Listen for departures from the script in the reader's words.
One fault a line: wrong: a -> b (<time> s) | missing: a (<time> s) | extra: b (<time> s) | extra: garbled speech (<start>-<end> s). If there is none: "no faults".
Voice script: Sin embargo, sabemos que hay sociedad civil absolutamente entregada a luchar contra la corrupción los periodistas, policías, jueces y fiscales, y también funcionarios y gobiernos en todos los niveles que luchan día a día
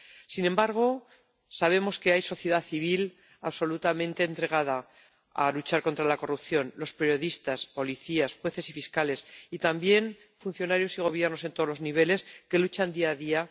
no faults